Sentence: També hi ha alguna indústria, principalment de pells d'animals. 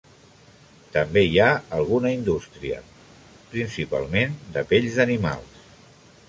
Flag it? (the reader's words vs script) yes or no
no